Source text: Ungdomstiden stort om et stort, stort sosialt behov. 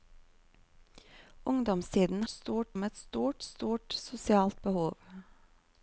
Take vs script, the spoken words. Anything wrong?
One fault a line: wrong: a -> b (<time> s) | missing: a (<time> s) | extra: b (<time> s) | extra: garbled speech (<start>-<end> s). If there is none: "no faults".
no faults